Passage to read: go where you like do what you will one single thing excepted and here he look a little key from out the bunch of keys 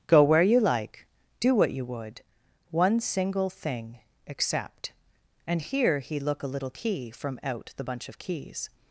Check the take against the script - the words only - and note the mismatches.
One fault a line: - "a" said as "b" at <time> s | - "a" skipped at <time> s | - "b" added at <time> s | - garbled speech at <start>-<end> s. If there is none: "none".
- "will" said as "would" at 1.9 s
- "excepted" said as "except" at 4.3 s